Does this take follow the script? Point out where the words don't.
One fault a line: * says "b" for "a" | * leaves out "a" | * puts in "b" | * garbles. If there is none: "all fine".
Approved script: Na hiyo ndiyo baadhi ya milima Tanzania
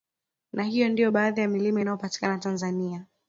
* puts in "inayopatikana"